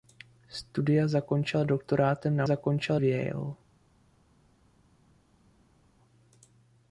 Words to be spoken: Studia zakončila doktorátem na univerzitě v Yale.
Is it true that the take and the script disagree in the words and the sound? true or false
true